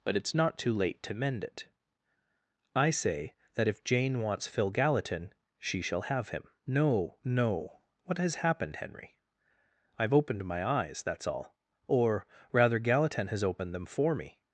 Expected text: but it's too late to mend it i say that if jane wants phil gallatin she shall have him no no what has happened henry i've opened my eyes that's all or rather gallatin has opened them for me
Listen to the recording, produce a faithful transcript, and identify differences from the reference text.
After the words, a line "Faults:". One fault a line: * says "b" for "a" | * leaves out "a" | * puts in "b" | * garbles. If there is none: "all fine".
but it's not too late to mend it i say that if jane wants phil gallatin she shall have him no no what has happened henry i've opened my eyes that's all or rather gallatin has opened them for me
Faults:
* puts in "not"